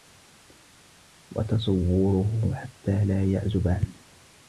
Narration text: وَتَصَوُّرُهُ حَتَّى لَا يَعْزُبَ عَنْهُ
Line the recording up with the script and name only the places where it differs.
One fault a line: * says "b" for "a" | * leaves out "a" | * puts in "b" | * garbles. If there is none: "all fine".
all fine